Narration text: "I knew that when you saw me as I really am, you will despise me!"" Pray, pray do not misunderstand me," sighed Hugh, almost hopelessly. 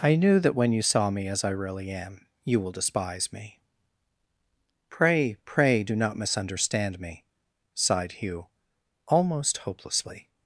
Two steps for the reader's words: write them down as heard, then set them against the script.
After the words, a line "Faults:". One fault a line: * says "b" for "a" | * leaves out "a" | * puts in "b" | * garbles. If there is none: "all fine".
"I knew that when you saw me as I really am, you will despise me!"" Pray, pray do not misunderstand me," sighed Hugh, almost hopelessly.
Faults:
all fine